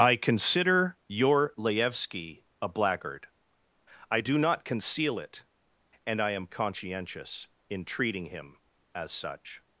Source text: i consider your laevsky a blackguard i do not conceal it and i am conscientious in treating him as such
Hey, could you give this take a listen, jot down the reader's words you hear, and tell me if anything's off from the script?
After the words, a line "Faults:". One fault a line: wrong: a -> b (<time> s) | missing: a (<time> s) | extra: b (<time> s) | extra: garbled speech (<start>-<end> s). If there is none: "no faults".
i consider your laevsky a blackguard i do not conceal it and i am conscientious in treating him as such
Faults:
no faults